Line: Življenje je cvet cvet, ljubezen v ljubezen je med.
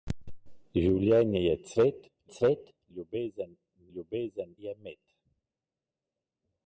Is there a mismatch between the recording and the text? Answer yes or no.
no